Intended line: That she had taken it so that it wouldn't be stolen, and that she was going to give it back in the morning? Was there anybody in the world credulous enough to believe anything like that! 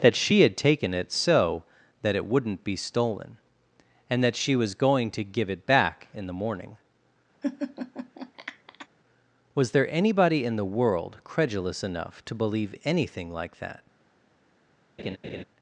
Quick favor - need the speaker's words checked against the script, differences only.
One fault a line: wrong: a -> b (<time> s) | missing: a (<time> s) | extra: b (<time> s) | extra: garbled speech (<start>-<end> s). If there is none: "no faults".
no faults